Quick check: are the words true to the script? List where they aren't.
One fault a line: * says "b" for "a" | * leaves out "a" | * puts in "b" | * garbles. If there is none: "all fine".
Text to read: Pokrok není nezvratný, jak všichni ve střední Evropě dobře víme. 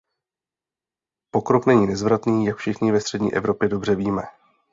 all fine